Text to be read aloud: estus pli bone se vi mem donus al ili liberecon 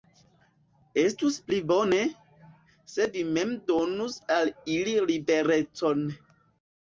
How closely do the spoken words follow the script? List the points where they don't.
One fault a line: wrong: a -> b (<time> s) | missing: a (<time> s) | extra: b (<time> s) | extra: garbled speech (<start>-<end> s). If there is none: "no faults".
no faults